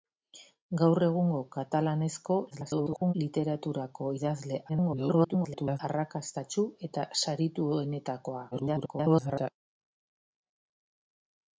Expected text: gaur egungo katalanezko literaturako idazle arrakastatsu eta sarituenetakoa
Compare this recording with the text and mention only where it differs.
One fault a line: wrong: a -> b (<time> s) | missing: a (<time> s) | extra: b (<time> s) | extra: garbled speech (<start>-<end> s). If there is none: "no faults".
extra: garbled speech (2.5-3.1 s)
extra: garbled speech (4.7-5.8 s)
extra: garbled speech (8.5-9.5 s)